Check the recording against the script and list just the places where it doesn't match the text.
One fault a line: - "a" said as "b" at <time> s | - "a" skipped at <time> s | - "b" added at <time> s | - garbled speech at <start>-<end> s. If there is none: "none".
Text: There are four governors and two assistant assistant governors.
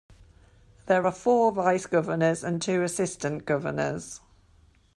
- "vice" added at 1.5 s
- "assistant" skipped at 3.4 s